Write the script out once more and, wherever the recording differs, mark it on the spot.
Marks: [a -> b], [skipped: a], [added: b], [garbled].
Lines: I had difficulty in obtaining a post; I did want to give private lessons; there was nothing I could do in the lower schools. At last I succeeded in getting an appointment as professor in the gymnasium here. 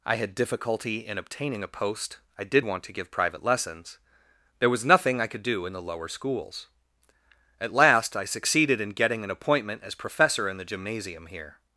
I had difficulty in obtaining a post; I did want to give private lessons; there was nothing I could do in the lower schools. At last I succeeded in getting an appointment as professor in the gymnasium here.